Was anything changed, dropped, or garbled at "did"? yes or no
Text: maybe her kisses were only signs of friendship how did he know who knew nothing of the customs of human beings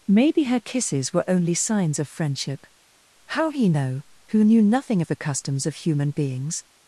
yes